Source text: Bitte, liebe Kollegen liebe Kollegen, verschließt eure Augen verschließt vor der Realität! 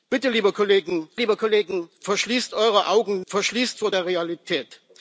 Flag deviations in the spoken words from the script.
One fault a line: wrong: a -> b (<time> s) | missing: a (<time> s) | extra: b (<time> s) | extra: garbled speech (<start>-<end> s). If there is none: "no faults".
no faults